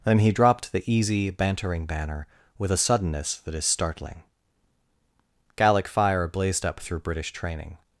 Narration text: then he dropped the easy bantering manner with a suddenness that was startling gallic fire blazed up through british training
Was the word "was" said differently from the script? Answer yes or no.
yes